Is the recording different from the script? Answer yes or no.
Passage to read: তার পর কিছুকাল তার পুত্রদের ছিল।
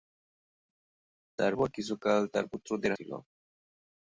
no